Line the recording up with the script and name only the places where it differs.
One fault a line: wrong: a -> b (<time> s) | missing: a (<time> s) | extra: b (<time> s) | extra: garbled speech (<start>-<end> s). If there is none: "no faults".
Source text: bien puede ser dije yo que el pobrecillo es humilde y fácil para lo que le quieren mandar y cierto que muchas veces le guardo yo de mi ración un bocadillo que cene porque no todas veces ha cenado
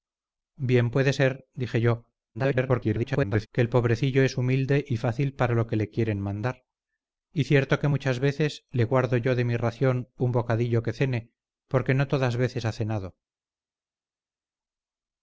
extra: garbled speech (2.3-3.5 s)